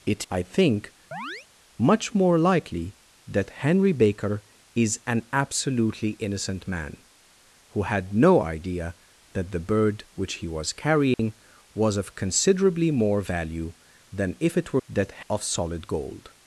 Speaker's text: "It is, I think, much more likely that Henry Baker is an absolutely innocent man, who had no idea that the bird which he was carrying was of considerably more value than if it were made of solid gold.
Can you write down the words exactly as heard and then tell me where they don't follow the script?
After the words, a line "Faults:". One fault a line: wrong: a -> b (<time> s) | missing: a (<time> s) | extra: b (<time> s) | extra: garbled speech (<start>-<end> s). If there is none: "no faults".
"It I think, much more likely that Henry Baker is an absolutely innocent man, who had no idea that the bird which he was carrying was of considerably more value than if it were that of solid gold.
Faults:
missing: is (0.3 s)
wrong: made -> that (14.9 s)